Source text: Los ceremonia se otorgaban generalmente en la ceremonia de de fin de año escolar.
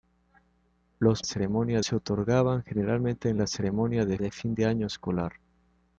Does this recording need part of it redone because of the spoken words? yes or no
no